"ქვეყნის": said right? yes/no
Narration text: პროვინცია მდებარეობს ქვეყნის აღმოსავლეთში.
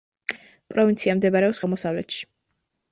no